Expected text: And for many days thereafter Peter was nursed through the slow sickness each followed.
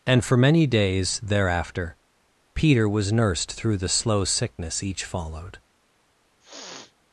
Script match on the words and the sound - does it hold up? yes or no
no